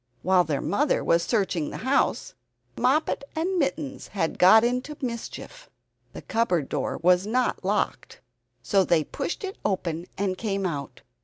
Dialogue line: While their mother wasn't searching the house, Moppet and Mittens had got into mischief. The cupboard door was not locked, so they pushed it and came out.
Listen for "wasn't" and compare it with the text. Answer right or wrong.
wrong